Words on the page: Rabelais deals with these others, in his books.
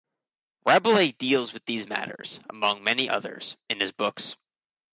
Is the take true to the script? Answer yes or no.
no